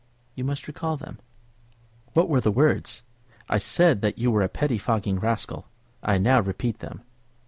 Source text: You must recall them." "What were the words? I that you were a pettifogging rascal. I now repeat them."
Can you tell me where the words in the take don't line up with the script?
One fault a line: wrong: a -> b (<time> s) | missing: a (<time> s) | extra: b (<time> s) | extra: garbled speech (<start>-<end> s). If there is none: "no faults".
extra: said (3.6 s)